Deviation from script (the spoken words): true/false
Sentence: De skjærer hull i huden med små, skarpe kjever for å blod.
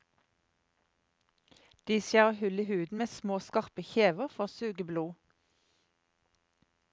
true